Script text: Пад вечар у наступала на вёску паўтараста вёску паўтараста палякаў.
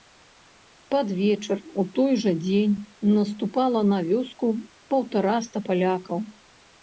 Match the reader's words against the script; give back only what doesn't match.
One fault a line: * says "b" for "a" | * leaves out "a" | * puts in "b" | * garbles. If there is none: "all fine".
* puts in "той жа дзень"
* leaves out "вёску паўтараста"